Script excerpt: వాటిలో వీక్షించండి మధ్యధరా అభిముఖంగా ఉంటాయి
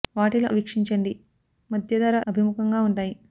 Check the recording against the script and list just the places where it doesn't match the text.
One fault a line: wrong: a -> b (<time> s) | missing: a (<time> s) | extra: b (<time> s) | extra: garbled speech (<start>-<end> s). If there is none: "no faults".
no faults